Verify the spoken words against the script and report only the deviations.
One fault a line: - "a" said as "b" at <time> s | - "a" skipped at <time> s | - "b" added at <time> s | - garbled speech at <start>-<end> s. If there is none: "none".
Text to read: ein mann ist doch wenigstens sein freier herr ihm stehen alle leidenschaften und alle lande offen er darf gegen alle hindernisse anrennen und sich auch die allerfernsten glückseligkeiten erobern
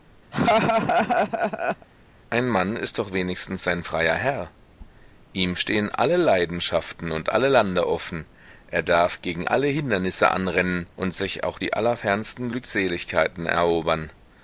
none